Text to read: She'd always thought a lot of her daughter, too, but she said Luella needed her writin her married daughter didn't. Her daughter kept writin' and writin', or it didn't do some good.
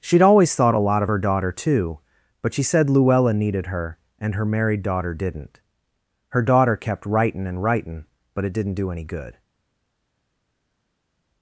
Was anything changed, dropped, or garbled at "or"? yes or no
yes